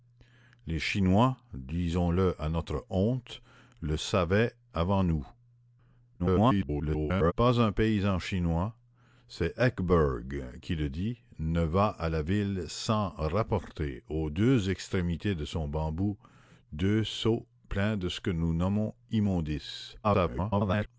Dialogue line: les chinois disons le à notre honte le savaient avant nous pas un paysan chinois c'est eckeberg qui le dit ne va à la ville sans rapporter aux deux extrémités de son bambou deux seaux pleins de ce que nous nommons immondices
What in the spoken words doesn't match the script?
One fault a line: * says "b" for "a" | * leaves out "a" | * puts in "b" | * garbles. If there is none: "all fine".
* garbles
* garbles